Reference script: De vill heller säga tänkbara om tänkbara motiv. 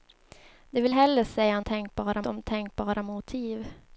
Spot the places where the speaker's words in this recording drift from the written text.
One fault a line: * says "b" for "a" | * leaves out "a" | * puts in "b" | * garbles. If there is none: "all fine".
all fine